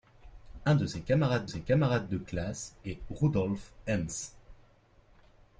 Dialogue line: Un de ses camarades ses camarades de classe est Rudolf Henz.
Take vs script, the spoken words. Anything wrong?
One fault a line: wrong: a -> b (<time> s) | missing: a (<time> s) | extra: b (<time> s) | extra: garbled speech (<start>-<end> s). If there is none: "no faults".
no faults